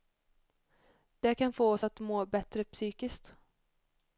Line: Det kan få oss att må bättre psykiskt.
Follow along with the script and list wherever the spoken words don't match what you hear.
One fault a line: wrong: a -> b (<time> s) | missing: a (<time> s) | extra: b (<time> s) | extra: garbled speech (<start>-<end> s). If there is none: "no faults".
no faults